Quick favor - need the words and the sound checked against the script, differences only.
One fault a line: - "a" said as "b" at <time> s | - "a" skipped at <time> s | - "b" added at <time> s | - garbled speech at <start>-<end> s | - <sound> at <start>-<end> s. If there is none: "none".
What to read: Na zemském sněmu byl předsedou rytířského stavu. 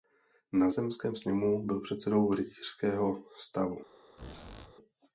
- squeak at 4.2-4.7 s